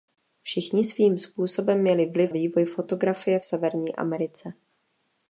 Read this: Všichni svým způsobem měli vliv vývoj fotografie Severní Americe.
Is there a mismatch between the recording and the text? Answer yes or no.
no